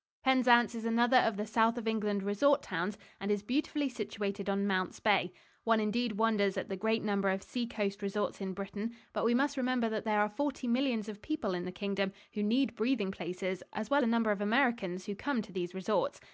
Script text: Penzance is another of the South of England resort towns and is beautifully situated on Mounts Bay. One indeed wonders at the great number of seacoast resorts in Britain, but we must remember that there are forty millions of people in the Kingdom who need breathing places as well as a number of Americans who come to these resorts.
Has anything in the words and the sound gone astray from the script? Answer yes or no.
yes